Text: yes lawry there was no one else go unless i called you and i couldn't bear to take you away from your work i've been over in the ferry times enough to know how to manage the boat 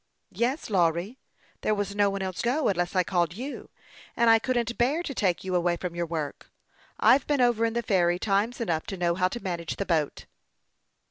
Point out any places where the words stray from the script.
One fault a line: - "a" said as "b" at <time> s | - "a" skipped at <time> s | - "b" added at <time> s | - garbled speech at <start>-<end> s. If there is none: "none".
none